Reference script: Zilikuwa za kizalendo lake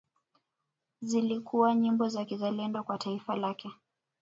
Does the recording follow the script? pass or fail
fail